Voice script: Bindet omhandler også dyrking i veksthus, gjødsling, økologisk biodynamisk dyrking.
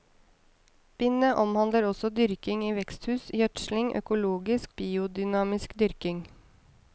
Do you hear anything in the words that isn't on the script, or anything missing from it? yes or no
no